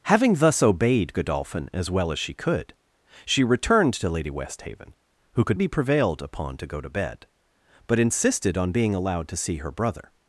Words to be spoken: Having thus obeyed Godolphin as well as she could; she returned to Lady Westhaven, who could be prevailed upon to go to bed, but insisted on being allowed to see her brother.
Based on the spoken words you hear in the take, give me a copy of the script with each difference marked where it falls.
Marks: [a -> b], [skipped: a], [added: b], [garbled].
Having thus obeyed Godolphin as well as she could; she returned to Lady Westhaven, who could be prevailed upon to go to bed, but insisted on being allowed to see her brother.